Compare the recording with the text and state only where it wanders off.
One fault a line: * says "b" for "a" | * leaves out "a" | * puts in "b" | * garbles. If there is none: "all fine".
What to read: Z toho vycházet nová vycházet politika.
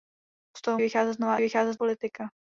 all fine